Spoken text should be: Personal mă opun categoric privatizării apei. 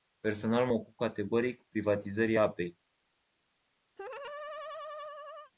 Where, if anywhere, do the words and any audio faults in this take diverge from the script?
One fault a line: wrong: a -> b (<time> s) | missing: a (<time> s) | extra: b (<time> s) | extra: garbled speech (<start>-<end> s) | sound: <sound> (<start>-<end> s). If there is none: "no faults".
sound: laugh (4.0-5.5 s)